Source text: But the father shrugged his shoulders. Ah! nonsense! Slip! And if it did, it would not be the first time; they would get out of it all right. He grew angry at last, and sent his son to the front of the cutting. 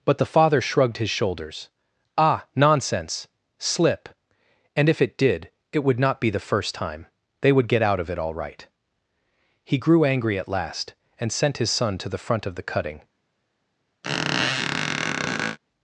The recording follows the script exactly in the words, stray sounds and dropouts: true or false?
false